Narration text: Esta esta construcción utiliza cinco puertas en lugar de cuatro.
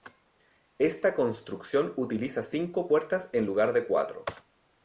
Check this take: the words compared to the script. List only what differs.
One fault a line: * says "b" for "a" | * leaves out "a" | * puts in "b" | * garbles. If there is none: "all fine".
* leaves out "esta"